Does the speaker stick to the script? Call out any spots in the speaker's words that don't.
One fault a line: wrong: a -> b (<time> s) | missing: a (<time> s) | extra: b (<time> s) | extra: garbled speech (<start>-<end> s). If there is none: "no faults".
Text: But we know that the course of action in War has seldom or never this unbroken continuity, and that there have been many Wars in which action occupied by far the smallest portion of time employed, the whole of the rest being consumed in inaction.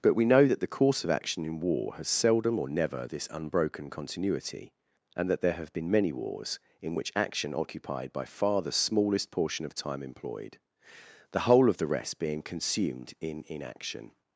no faults